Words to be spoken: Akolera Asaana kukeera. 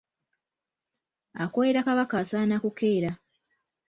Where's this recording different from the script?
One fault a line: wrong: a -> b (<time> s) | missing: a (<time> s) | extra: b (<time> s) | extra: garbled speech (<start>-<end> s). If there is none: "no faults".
extra: Kabaka (1.8 s)